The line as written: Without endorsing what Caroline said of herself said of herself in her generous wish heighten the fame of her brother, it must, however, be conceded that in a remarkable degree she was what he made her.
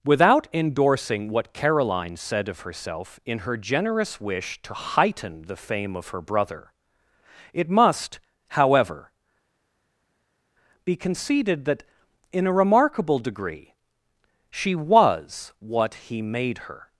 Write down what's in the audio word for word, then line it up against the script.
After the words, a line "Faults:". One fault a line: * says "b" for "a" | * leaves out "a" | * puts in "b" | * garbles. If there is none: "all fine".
Without endorsing what Caroline said of herself in her generous wish to heighten the fame of her brother, it must, however, be conceded that in a remarkable degree she was what he made her.
Faults:
* leaves out "said of herself"
* puts in "to"